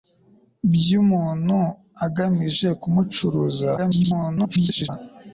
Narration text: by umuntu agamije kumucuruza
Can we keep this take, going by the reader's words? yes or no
no